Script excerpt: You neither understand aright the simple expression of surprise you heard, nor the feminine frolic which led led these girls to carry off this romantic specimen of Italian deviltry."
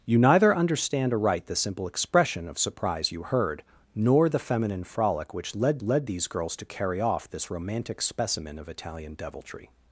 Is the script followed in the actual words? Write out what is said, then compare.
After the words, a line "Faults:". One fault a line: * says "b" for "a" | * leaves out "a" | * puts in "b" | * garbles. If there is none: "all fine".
You neither understand aright the simple expression of surprise you heard, nor the feminine frolic which led led these girls to carry off this romantic specimen of Italian deviltry."
Faults:
all fine